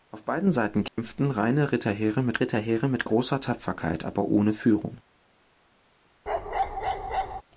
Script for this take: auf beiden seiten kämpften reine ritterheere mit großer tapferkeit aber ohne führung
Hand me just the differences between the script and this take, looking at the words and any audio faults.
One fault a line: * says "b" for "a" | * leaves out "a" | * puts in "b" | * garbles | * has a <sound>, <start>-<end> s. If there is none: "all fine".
* has a dropout, 0.9-1.0 s
* puts in "ritterheere mit"
* has a bark, 6.3-7.4 s